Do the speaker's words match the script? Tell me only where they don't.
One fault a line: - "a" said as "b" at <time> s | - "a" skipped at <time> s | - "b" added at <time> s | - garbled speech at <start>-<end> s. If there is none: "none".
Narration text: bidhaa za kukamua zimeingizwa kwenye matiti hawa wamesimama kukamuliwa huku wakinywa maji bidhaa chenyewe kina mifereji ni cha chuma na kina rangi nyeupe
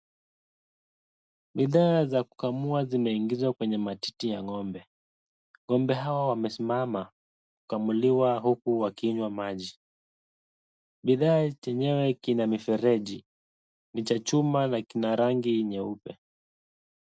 - "ya ngo'mbe ngo'mbe" added at 4.3 s